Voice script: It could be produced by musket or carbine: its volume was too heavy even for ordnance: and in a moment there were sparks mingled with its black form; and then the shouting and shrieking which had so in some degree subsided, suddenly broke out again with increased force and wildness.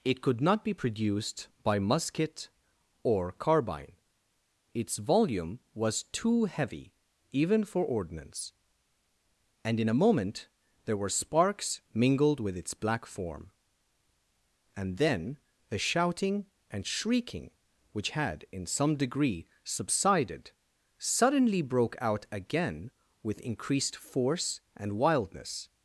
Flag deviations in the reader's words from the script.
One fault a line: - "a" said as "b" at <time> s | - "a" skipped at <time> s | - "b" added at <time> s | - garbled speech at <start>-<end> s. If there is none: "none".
- "not" added at 0.4 s
- "so" skipped at 18.4 s